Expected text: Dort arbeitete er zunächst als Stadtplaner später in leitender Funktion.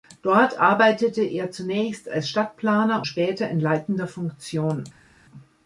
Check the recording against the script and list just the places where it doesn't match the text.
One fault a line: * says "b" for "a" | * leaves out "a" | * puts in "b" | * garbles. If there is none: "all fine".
all fine